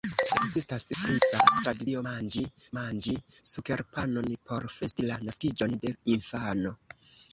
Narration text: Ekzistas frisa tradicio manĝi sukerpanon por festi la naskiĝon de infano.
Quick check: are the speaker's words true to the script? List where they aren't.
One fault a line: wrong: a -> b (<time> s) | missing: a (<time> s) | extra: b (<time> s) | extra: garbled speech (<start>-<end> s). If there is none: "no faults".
extra: manĝi (2.8 s)